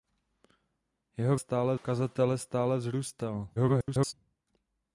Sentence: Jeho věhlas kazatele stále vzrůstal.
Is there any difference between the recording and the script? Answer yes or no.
yes